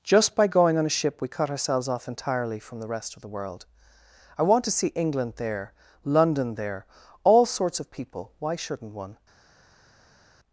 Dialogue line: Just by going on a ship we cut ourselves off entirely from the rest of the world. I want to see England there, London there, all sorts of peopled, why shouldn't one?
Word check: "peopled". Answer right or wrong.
wrong